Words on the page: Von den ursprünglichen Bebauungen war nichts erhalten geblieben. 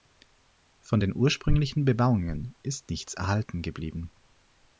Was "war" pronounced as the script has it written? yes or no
no